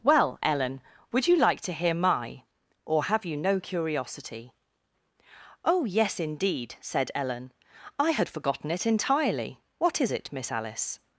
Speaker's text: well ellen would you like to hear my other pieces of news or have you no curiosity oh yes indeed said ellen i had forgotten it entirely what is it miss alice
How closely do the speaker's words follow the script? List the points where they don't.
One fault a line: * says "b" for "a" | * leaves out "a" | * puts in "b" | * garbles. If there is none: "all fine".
* leaves out "other pieces of news"